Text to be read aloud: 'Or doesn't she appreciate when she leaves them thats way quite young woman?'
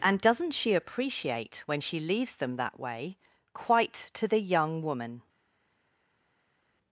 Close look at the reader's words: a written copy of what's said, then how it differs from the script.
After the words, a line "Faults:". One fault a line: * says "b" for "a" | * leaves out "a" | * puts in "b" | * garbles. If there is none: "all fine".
'And doesn't she appreciate when she leaves them that way quite to the young woman?'
Faults:
* says "And" for "Or"
* says "that" for "thats"
* puts in "to the"